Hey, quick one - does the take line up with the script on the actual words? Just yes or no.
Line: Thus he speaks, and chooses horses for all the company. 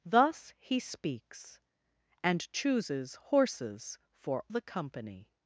no